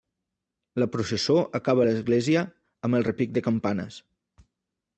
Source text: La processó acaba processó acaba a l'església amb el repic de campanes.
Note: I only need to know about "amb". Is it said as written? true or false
true